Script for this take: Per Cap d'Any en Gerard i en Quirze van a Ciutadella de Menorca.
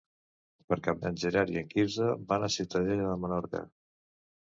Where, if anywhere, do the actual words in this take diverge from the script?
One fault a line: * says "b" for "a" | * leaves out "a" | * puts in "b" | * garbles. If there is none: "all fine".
* leaves out "d'Any"